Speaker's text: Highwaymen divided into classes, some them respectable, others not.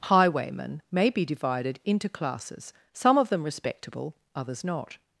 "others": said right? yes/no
yes